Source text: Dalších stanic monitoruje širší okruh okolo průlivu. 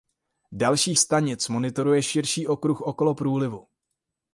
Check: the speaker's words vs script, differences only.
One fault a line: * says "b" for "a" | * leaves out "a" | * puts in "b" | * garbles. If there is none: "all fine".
all fine